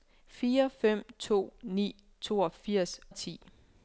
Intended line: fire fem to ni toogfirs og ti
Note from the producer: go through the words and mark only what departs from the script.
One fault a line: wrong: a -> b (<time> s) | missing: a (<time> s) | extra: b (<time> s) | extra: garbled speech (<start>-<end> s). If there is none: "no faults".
no faults